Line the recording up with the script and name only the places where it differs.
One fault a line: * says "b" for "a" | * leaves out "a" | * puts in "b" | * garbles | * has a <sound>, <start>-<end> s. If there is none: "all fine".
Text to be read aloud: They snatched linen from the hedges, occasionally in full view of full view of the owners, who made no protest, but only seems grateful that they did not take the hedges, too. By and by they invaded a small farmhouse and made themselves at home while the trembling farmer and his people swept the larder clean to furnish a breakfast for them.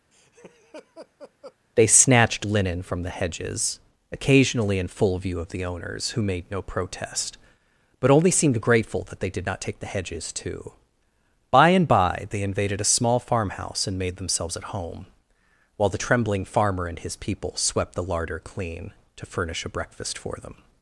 * has a laugh, 0.1-1.6 s
* leaves out "full view of"
* says "seemed" for "seems"